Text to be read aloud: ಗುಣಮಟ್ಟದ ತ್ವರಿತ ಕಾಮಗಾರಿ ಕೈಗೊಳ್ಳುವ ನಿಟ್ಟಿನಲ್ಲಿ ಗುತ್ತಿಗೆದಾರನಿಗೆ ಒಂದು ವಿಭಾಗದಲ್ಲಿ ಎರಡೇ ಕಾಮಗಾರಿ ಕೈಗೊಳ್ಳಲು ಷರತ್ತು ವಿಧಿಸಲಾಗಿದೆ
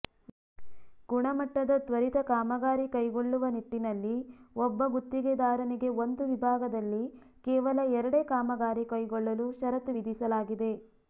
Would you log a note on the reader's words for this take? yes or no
yes